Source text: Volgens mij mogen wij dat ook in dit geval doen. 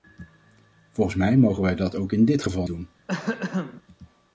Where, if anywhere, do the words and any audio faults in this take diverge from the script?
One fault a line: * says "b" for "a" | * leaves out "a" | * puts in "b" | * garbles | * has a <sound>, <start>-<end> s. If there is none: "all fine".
* has a throat clearing, 3.1-3.8 s